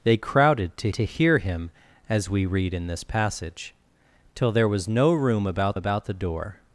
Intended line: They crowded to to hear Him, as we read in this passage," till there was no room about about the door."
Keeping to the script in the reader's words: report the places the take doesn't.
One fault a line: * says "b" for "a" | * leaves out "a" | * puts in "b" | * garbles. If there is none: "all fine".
all fine